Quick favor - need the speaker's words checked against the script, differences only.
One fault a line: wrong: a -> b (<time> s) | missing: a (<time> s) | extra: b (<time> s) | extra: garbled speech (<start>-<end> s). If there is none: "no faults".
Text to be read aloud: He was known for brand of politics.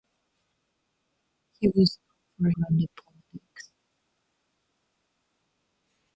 no faults